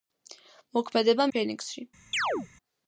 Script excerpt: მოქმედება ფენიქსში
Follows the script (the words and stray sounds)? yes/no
no